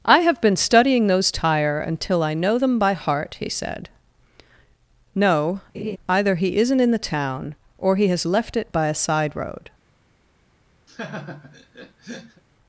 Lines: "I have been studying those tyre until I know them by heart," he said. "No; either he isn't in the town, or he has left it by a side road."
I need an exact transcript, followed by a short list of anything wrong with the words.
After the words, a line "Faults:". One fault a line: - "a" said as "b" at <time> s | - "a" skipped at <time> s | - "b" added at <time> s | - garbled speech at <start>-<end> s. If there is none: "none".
"I have been studying those tyre until I know them by heart," he said. "No; either he isn't in the town, or he has left it by a side road."
Faults:
none